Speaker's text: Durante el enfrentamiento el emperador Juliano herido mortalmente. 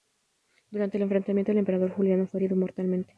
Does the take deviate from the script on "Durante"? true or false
false